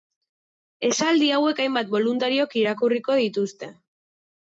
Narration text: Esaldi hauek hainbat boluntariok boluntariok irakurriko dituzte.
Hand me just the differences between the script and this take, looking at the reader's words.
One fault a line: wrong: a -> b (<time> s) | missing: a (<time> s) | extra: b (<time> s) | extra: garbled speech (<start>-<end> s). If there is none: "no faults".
missing: boluntariok (2.6 s)